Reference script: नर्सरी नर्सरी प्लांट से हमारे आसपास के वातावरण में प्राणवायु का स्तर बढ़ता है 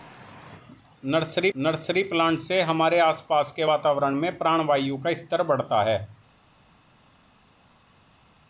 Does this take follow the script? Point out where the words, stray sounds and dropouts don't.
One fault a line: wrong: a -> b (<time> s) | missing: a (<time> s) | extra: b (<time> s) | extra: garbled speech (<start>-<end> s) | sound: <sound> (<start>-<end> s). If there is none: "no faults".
no faults